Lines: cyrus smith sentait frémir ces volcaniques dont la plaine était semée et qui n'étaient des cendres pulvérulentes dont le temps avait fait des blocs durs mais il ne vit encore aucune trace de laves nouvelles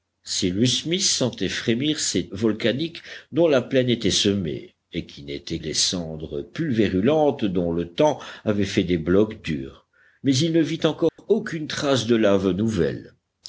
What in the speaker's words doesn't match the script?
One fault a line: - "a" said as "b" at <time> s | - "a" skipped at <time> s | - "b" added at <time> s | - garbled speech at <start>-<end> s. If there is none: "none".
none